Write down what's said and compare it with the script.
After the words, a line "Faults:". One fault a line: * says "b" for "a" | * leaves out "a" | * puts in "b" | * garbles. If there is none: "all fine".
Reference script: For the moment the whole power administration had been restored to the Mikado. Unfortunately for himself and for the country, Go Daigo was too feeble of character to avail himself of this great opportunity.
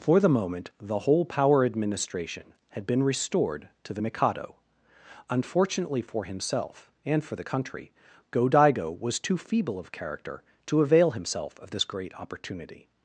For the moment the whole power administration had been restored to the Mikado. Unfortunately for himself and for the country, Go Daigo was too feeble of character to avail himself of this great opportunity.
Faults:
all fine